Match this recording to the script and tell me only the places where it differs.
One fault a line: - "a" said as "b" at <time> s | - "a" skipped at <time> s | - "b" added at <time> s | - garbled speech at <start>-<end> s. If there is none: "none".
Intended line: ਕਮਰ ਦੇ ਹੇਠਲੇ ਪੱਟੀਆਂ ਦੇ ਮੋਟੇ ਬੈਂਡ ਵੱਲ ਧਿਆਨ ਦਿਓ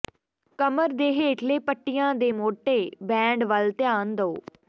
none